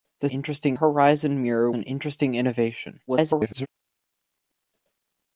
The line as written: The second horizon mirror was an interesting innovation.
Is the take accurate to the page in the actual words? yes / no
no